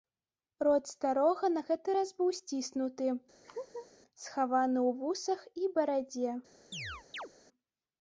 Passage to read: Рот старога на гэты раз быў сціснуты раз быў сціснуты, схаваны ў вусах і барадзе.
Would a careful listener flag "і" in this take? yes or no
no